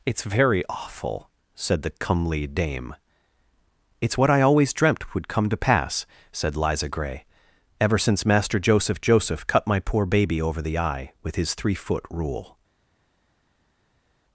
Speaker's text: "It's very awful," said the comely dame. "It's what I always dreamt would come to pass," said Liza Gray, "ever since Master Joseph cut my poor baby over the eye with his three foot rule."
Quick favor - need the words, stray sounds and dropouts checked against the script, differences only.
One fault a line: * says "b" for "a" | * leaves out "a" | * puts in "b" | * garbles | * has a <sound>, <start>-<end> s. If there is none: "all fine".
* puts in "Joseph"